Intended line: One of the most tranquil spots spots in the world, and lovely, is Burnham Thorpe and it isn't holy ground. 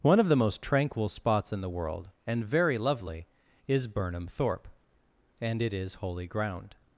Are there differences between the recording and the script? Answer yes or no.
yes